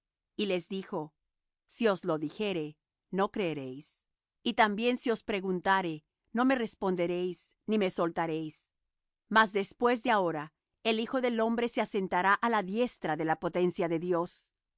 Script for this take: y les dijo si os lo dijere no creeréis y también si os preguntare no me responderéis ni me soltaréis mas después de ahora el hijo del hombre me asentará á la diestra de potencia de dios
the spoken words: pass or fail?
fail